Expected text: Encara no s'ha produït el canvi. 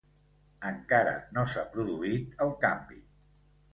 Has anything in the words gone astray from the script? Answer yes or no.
no